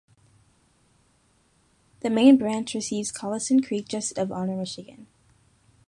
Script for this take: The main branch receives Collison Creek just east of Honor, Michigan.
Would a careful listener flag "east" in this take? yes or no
yes